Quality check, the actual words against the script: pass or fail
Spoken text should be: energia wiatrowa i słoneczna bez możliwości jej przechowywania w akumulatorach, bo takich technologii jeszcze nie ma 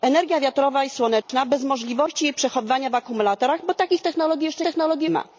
fail